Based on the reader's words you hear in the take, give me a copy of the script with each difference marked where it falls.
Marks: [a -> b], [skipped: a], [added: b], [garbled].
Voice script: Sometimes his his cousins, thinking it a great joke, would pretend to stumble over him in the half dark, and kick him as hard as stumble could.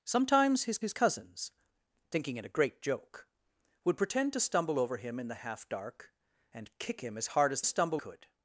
Sometimes his his cousins, thinking it a great joke, would pretend to stumble over him in the half dark, and kick him as hard as stumble could.